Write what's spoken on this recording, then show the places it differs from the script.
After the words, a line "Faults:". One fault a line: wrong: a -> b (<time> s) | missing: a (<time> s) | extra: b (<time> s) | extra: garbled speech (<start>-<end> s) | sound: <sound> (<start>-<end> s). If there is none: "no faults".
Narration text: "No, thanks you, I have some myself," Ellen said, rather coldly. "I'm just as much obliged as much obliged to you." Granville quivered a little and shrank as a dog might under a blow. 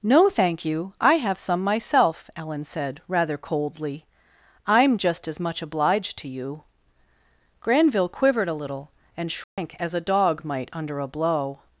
"No, thank you, I have some myself," Ellen said, rather coldly. "I'm just as much obliged to you." Granville quivered a little and shrank as a dog might under a blow.
Faults:
wrong: thanks -> thank (0.3 s)
missing: as much obliged (6.2 s)
sound: dropout (9.4-9.6 s)